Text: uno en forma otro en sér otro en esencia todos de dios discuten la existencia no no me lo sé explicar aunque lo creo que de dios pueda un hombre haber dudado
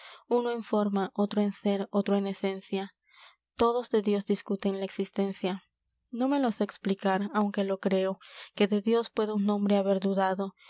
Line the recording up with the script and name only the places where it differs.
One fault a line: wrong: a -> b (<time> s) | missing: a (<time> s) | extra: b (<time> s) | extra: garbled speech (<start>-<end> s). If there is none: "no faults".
missing: no (6.3 s)